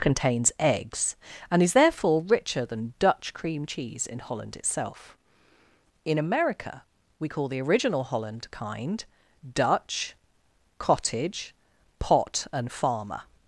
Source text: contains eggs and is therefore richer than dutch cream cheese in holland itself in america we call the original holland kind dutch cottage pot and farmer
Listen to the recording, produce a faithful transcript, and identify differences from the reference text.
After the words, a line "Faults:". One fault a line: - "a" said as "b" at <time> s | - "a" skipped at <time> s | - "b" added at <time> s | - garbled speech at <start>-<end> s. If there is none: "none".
contains eggs and is therefore richer than dutch cream cheese in holland itself in america we call the original holland kind dutch cottage pot and farmer
Faults:
none